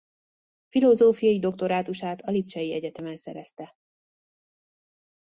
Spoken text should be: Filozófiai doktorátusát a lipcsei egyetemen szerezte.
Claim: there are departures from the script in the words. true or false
false